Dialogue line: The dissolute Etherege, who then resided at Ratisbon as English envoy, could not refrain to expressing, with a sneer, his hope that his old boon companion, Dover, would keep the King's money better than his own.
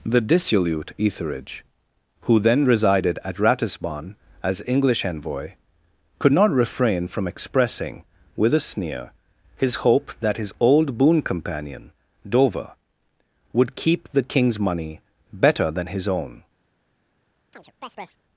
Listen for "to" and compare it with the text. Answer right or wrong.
wrong